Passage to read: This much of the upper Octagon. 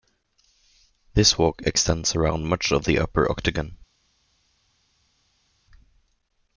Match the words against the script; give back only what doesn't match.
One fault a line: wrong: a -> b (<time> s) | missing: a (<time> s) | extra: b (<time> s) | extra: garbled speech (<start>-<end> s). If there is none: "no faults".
extra: walk extends around (1.4 s)